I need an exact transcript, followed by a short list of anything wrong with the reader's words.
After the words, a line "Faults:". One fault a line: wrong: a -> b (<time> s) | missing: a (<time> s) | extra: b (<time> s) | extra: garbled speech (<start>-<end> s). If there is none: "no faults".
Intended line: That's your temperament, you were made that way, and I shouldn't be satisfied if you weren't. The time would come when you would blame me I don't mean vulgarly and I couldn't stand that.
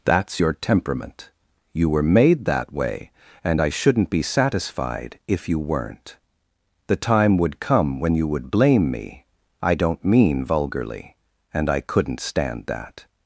That's your temperament, you were made that way, and I shouldn't be satisfied if you weren't. The time would come when you would blame me I don't mean vulgarly and I couldn't stand that.
Faults:
no faults